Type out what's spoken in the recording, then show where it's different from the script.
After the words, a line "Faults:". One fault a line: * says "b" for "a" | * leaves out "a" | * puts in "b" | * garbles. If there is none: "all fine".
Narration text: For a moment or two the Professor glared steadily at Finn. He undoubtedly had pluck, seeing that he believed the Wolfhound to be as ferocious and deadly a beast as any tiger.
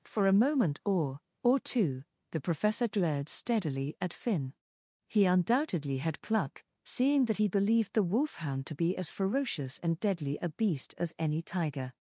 For a moment or or two the Professor glared steadily at Finn. He undoubtedly had pluck, seeing that he believed the Wolfhound to be as ferocious and deadly a beast as any tiger.
Faults:
* puts in "or"